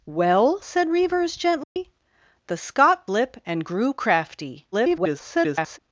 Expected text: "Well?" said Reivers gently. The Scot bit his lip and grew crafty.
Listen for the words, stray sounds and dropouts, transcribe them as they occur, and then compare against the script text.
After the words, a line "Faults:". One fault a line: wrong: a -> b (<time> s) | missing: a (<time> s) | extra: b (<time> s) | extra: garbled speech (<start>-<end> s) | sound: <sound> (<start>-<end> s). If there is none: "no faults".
"Well?" said Reivers gently. The Scot lip and grew crafty. [garbled]
Faults:
sound: dropout (1.6-1.8 s)
missing: bit his (3.1 s)
extra: garbled speech (4.7-5.8 s)